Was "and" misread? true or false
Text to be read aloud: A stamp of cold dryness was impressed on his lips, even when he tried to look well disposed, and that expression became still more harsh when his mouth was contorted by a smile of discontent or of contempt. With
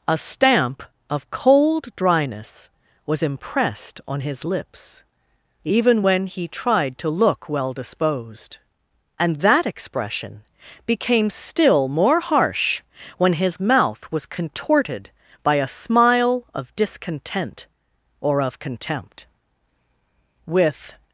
false